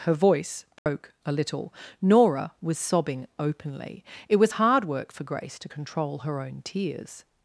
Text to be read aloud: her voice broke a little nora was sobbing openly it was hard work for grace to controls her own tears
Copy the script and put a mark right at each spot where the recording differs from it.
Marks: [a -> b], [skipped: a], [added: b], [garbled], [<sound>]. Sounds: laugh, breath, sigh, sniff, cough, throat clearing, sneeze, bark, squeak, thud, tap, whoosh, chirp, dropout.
her voice broke [dropout] a little nora was sobbing openly it was hard work for grace to [controls -> control] her own tears